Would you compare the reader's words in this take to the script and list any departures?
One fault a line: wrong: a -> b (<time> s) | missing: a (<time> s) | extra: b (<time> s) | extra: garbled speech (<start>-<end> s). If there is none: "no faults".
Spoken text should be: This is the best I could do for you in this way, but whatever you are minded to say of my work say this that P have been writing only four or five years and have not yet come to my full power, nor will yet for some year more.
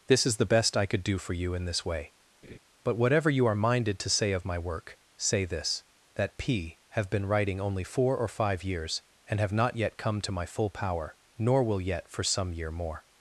no faults